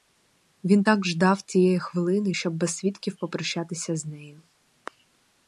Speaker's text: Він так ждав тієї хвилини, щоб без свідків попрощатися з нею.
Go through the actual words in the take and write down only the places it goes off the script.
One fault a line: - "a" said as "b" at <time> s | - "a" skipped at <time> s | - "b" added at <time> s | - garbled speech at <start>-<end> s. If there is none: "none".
none